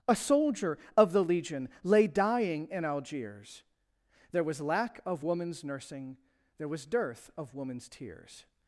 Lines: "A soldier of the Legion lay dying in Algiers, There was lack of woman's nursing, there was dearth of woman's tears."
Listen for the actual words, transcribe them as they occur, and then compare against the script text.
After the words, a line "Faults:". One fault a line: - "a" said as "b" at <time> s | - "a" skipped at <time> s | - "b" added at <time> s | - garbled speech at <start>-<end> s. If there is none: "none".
"A soldier of the Legion lay dying in Algiers, There was lack of woman's nursing, there was dearth of woman's tears."
Faults:
none